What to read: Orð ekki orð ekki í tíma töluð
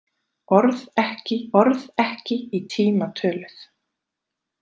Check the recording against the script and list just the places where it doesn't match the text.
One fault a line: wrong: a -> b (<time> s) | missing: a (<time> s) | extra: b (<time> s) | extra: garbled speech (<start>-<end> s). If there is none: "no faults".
no faults